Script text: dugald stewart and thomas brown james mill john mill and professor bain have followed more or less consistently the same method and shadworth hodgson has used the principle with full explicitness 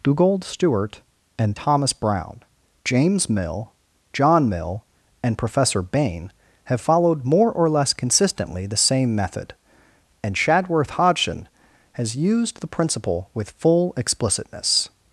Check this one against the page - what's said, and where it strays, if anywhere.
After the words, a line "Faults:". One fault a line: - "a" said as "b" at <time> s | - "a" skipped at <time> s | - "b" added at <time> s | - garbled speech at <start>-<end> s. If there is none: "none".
dugald stewart and thomas brown james mill john mill and professor bain have followed more or less consistently the same method and shadworth hodgson has used the principle with full explicitness
Faults:
none